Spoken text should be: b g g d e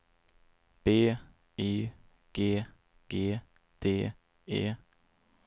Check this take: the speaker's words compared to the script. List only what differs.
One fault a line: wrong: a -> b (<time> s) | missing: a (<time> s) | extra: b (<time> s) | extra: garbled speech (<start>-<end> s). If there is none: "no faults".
extra: y (1.6 s)